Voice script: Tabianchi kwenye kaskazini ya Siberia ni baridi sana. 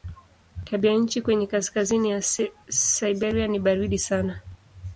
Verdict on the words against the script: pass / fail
pass